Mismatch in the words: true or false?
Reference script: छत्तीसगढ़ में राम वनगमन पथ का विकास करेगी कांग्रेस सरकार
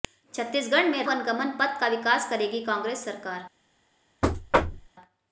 true